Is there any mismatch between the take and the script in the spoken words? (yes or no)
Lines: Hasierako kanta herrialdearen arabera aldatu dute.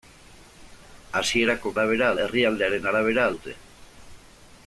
yes